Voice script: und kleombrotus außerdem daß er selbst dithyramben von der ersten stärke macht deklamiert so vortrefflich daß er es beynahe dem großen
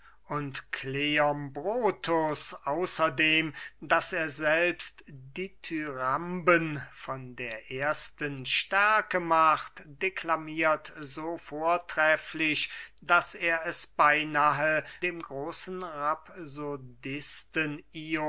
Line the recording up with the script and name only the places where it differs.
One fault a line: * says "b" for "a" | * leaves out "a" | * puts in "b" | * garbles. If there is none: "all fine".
all fine